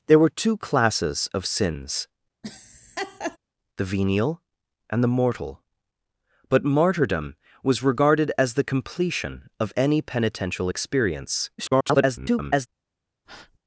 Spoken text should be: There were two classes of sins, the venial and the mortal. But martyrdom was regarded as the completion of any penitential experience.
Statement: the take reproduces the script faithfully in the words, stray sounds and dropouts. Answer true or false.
false